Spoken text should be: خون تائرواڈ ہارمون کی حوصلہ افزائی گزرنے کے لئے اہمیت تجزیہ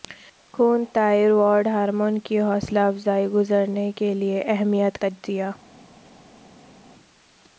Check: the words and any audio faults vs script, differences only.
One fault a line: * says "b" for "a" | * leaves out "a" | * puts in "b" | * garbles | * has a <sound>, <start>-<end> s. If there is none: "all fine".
all fine